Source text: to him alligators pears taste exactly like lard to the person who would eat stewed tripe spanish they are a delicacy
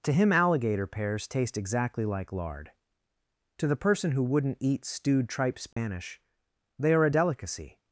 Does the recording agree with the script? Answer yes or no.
no